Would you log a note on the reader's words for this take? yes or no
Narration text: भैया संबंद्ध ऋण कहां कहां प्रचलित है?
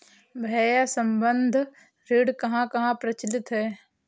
no